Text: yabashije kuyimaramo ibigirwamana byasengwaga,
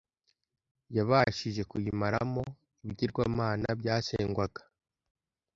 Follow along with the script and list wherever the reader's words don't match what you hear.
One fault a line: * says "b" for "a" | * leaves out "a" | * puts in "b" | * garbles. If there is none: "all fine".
all fine